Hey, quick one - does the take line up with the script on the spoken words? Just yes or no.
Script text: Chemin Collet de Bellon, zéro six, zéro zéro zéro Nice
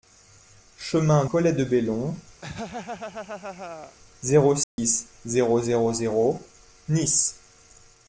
yes